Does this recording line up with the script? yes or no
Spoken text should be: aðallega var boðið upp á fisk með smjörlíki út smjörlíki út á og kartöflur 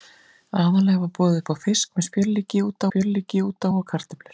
yes